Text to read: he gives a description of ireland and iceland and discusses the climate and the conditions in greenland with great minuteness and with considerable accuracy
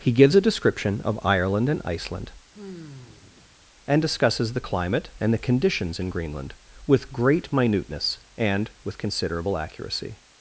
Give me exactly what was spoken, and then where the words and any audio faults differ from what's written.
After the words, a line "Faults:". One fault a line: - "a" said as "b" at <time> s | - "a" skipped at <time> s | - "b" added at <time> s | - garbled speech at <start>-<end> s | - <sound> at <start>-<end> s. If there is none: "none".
he gives a description of ireland and iceland and discusses the climate and the conditions in greenland with great minuteness and with considerable accuracy
Faults:
- sigh at 2.5-3.5 s